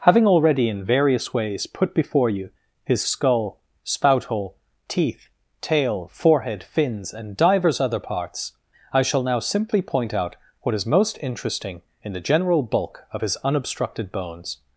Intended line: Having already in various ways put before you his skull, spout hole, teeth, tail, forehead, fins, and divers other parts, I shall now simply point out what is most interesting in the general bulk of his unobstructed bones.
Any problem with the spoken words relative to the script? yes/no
no